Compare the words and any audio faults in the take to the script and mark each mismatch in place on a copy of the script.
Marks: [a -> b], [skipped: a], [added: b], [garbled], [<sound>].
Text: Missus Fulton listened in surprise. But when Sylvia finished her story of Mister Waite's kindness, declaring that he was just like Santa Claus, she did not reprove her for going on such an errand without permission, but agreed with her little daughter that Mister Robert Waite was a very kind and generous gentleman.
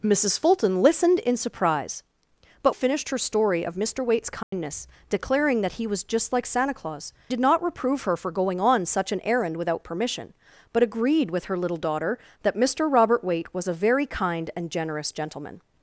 Missus Fulton listened in surprise. But [skipped: when Sylvia] finished her story of Mister Waite's kindness, [dropout] declaring that he was just like Santa Claus, [skipped: she] did not reprove her for going on such an errand without permission, but agreed with her little daughter that Mister Robert Waite was a very kind and generous gentleman.